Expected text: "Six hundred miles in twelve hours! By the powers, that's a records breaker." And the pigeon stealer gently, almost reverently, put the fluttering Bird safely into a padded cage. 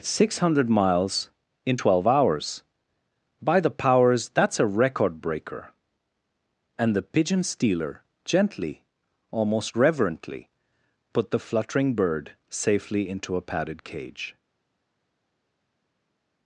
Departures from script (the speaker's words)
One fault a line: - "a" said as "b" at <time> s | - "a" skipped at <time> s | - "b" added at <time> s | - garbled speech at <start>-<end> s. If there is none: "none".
- "records" said as "record" at 4.7 s